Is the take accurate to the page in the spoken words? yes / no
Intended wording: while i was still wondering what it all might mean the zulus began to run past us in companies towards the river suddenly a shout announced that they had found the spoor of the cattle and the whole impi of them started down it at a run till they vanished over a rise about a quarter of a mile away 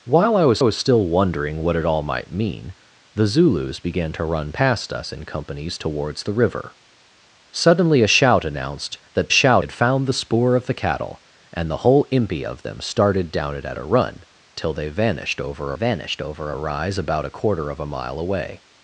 no